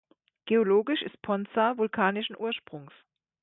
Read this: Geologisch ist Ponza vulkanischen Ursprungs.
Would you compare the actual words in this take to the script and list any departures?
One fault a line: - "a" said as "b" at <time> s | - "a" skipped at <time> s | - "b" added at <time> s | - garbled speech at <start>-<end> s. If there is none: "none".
none